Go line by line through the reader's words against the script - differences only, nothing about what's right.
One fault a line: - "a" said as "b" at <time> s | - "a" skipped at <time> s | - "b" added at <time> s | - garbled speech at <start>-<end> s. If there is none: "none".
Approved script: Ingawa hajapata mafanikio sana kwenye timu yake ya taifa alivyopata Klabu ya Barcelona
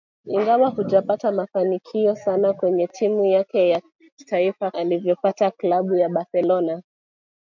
none